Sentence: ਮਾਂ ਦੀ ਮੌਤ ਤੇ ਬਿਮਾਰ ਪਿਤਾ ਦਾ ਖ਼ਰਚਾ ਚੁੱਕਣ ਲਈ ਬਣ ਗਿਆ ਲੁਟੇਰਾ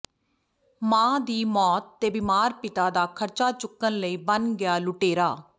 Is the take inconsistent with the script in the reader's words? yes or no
no